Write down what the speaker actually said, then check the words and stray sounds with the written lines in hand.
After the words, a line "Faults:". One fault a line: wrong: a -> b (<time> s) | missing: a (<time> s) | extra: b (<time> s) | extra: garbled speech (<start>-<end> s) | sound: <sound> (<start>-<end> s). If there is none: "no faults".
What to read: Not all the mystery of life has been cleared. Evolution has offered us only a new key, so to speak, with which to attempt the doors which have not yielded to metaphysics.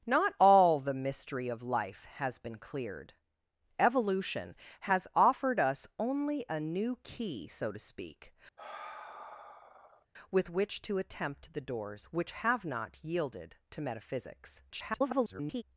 Not all the mystery of life has been cleared. Evolution has offered us only a new key, so to speak, with which to attempt the doors which have not yielded to metaphysics. [garbled]
Faults:
sound: sigh (8.6-10.1 s)
extra: garbled speech (14.7-15.6 s)